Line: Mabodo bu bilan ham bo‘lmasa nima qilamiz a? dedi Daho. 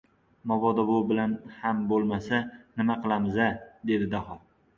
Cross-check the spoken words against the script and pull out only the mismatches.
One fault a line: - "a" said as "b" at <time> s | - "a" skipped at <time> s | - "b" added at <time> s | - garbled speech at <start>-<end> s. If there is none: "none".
none